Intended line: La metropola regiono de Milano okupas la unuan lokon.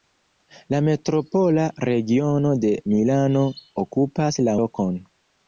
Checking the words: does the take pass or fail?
fail